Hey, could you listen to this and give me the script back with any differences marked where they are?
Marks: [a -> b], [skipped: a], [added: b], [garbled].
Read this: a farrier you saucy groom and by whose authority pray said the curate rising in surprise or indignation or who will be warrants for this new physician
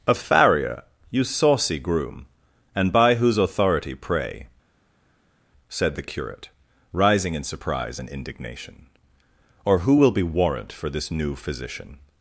a farrier you saucy groom and by whose authority pray said the curate rising in surprise [or -> and] indignation or who will be [warrants -> warrant] for this new physician